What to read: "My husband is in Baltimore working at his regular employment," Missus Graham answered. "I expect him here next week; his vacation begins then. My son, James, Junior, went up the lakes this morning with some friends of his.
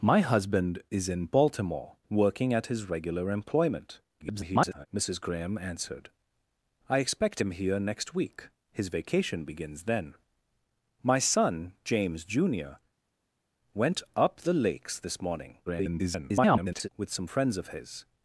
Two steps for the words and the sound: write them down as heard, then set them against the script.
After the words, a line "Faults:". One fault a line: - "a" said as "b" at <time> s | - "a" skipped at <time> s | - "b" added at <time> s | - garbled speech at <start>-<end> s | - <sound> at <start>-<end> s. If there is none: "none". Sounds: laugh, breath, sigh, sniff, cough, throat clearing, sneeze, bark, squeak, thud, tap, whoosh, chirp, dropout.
"My husband is in Baltimore working at his regular employment," [garbled] Missus Graham answered. "I expect him here next week; his vacation begins then. My son, James, Junior, went up the lakes this morning [garbled] with some friends of his.
Faults:
- garbled speech at 4.2-4.9 s
- garbled speech at 15.7-16.9 s